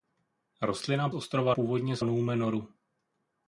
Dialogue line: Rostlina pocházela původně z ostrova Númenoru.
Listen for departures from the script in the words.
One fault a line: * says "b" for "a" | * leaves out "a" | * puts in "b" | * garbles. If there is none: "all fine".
* says "ostrova" for "pocházela"
* leaves out "ostrova"